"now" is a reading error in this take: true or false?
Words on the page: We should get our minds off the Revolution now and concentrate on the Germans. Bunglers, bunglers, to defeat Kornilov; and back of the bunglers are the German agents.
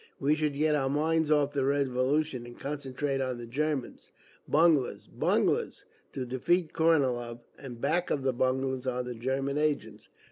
true